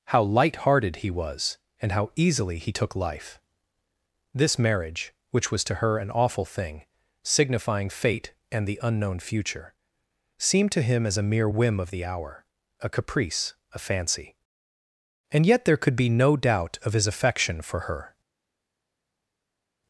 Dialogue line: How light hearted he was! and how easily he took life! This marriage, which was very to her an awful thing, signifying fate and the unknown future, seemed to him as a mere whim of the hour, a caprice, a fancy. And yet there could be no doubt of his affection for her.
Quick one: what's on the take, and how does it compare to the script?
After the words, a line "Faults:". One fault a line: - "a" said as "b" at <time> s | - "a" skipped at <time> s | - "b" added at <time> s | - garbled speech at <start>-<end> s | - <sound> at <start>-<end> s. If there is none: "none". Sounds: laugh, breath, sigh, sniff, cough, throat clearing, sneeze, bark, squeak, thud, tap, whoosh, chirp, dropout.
How light hearted he was! and how easily he took life! This marriage, which was to her an awful thing, signifying fate and the unknown future, seemed to him as a mere whim of the hour, a caprice, a fancy. And yet there could be no doubt of his affection for her.
Faults:
- "very" skipped at 5.6 s